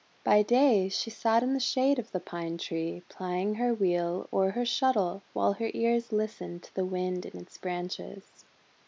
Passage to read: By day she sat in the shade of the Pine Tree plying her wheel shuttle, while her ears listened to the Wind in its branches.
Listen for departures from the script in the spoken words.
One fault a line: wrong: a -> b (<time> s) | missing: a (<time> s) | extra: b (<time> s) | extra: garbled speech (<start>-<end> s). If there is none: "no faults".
extra: or her (4.3 s)